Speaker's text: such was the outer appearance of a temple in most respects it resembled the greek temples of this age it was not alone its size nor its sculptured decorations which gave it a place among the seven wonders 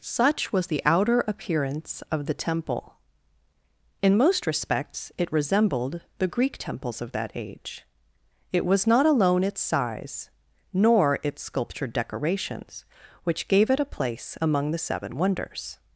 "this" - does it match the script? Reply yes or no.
no